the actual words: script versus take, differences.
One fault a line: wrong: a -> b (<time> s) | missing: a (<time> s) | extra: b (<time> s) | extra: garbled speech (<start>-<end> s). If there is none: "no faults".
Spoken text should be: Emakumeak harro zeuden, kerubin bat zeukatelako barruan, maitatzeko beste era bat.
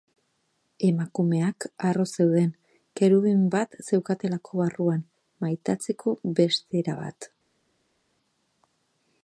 no faults